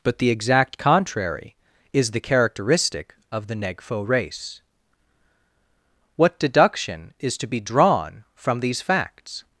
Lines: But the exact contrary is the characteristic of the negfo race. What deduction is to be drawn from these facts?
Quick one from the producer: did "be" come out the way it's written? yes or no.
yes